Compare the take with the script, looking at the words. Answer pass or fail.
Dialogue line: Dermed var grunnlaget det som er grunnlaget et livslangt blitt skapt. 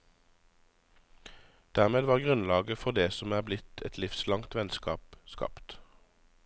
fail